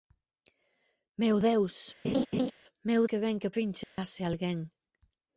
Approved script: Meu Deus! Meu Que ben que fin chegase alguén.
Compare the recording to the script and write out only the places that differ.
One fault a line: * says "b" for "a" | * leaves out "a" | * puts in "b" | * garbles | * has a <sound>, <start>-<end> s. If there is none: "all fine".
* has a laugh, 2.0-2.5 s
* has a dropout, 3.8-4.0 s